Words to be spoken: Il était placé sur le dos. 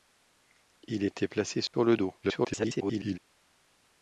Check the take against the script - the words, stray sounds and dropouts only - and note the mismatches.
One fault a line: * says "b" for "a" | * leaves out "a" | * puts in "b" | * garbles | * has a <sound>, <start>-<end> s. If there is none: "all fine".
* has a dropout, 1.7-1.7 s
* garbles